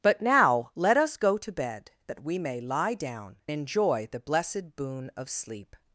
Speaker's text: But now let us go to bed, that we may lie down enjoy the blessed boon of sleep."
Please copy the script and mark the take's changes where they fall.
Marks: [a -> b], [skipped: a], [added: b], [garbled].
But now let us go to bed, that we may lie down enjoy the blessed boon of sleep."